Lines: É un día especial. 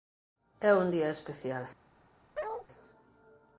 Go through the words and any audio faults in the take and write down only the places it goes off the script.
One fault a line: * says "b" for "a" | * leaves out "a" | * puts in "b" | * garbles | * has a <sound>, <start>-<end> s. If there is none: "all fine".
* has a bark, 2.3-2.7 s